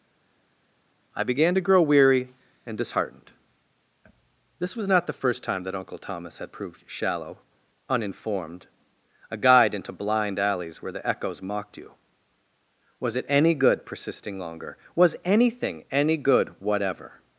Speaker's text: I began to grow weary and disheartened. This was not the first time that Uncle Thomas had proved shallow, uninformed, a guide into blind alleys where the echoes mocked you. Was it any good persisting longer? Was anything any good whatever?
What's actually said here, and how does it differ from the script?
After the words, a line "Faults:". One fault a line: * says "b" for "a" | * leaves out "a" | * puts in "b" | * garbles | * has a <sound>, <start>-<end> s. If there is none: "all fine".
I began to grow weary and disheartened. This was not the first time that Uncle Thomas had proved shallow, uninformed, a guide into blind alleys where the echoes mocked you. Was it any good persisting longer? Was anything any good whatever?
Faults:
all fine